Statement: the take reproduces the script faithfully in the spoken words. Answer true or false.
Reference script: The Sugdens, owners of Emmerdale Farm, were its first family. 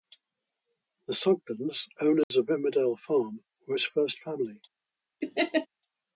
true